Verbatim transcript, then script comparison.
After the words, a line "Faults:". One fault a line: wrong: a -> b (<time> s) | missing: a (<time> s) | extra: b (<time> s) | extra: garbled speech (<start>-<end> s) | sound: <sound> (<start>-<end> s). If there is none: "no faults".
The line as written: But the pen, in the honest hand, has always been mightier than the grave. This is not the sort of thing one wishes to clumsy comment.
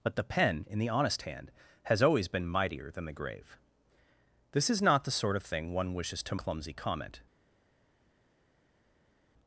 But the pen, in the honest hand, has always been mightier than the grave. This is not the sort of thing one wishes to clumsy comment.
Faults:
no faults